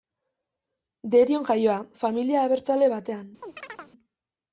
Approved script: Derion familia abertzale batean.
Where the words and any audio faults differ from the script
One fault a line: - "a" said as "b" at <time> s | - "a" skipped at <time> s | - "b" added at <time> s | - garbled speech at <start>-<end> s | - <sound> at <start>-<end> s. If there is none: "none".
- "jaioa" added at 1.5 s
- chirp at 3.4-3.9 s